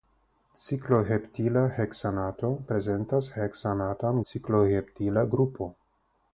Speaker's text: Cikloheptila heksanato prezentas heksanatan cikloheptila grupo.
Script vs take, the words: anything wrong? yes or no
no